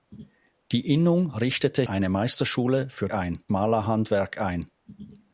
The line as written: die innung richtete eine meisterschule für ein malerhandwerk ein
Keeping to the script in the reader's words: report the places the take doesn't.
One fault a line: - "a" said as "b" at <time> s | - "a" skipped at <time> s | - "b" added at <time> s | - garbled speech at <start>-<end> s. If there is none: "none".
none